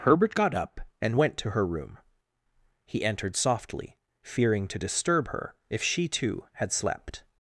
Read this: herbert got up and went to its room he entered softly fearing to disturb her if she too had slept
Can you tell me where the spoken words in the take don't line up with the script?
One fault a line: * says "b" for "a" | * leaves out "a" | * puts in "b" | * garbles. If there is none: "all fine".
* says "her" for "its"